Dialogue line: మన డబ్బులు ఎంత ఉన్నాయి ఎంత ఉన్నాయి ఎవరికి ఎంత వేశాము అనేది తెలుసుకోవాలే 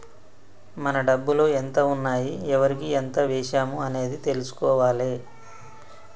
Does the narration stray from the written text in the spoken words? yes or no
yes